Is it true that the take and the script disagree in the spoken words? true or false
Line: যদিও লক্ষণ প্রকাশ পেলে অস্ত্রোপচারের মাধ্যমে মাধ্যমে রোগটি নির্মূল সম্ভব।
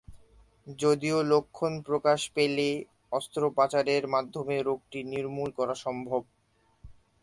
true